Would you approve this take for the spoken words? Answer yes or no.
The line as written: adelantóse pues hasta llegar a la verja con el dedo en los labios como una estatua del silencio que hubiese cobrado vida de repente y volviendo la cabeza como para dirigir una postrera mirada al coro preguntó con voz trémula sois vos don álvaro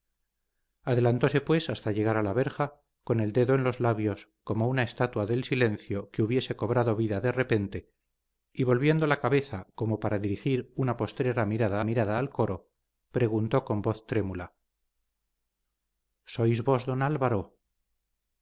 no